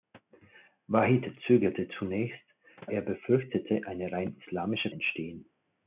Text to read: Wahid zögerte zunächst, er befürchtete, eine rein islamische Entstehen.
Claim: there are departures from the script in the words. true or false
false